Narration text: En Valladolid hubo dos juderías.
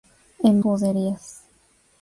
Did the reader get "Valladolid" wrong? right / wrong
wrong